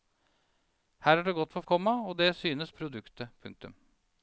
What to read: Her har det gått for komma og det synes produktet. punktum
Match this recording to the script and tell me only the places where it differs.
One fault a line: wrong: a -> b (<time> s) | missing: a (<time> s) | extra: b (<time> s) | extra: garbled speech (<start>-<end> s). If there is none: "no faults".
no faults